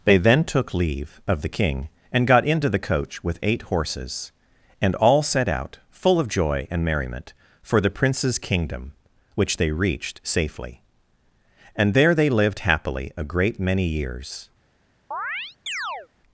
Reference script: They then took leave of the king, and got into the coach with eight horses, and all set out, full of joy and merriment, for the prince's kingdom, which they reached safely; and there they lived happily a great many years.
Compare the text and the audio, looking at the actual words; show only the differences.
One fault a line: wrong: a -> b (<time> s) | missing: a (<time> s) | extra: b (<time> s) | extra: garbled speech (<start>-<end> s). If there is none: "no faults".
no faults